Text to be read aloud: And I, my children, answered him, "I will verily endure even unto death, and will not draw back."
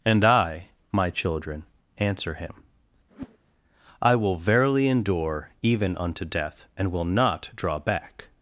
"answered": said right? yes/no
no